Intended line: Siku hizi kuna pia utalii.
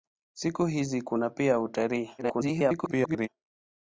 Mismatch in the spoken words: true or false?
true